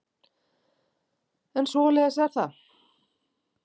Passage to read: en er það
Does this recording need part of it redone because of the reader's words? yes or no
yes